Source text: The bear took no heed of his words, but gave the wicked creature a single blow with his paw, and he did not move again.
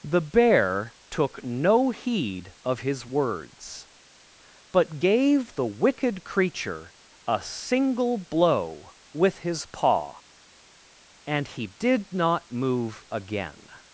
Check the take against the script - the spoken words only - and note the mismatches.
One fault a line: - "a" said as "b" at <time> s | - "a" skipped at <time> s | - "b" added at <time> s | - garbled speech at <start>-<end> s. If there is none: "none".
none